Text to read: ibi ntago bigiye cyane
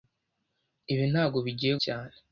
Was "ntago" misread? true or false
false